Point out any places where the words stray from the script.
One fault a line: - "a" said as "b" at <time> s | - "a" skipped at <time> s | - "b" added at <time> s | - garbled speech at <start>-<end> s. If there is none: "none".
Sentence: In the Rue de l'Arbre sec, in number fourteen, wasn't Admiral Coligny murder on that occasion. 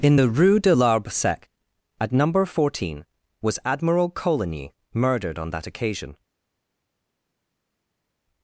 - "in" said as "at" at 2.0 s
- "wasn't" said as "was" at 3.4 s
- "murder" said as "murdered" at 4.9 s